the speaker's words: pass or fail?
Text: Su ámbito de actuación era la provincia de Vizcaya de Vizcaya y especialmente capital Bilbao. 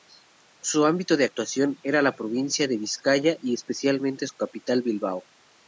fail